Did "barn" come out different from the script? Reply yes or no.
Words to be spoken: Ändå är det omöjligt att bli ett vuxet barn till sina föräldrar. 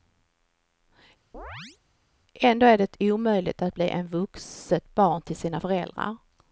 no